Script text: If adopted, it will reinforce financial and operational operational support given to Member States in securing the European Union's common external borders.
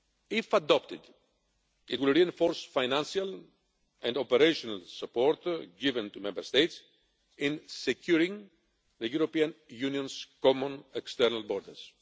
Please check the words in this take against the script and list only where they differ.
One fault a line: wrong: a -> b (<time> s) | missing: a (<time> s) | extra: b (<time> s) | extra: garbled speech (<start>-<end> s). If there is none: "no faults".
missing: operational (4.8 s)